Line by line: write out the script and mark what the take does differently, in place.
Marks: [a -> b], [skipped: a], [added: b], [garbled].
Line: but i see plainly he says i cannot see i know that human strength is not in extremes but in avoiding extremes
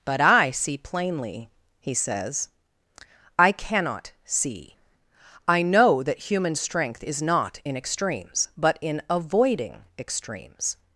but i see plainly he says i cannot see i know that human strength is not in extremes but in avoiding extremes